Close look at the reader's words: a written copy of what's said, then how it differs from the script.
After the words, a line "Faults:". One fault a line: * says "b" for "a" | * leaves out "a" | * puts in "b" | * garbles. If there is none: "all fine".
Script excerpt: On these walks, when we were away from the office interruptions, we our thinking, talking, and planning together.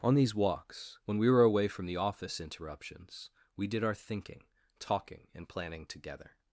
On these walks, when we were away from the office interruptions, we did our thinking, talking, and planning together.
Faults:
* puts in "did"